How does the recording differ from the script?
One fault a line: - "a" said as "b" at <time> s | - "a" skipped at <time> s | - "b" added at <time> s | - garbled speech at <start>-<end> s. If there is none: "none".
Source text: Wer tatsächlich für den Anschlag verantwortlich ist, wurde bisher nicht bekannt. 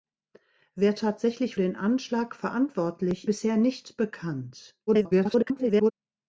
- "für" skipped at 1.6 s
- "ist wurde" skipped at 3.3 s
- garbled speech at 4.9-5.9 s